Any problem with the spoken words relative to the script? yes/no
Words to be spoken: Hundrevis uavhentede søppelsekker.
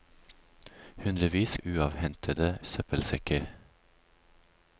no